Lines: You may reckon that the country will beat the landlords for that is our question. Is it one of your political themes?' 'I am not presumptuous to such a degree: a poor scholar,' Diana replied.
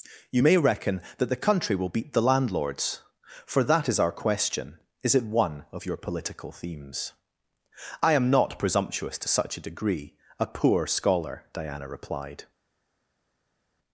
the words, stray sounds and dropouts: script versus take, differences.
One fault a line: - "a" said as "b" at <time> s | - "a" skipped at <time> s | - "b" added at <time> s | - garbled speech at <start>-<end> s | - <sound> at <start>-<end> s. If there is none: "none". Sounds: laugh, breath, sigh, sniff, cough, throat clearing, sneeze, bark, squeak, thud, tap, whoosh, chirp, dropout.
none